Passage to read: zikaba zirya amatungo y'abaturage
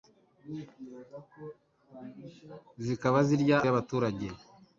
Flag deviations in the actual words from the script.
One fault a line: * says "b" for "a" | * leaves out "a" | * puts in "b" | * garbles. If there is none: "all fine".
* leaves out "amatungo"